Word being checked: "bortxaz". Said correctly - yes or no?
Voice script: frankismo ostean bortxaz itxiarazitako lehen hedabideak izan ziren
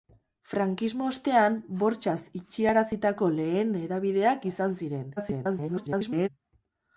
yes